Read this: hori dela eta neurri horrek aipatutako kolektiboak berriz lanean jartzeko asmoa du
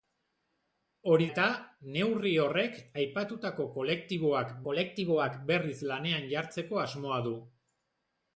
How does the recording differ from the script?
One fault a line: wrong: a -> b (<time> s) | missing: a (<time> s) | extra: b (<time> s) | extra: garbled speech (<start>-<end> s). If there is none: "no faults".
missing: dela (1.3 s)
extra: kolektiboak (4.6 s)